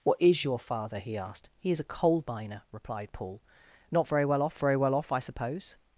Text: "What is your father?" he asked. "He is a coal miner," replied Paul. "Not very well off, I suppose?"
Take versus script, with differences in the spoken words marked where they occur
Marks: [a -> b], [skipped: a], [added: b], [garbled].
"What is your father?" he asked. "He is a coal miner," replied Paul. "Not very well off, [added: very well off] I suppose?"